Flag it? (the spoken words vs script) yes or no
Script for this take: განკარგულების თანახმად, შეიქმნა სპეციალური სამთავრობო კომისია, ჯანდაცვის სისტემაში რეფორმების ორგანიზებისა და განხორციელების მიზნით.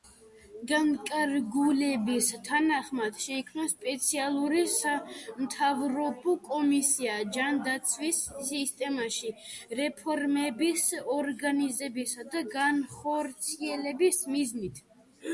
no